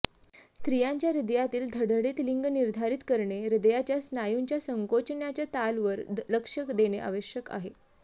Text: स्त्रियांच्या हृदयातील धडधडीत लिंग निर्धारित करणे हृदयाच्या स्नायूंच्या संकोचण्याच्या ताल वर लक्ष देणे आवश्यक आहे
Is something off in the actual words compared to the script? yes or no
no